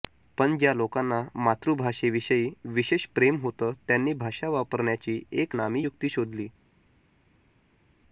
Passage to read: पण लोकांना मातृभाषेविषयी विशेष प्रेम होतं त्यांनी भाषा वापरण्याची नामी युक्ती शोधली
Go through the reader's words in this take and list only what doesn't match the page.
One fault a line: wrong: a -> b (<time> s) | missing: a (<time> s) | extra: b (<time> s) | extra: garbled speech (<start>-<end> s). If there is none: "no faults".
extra: ज्या (0.6 s)
extra: एक (5.3 s)